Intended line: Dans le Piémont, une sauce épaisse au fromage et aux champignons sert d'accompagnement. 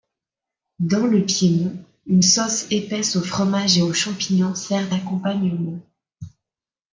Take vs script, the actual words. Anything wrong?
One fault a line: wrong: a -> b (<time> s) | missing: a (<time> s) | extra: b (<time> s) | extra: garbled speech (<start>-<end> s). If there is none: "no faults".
no faults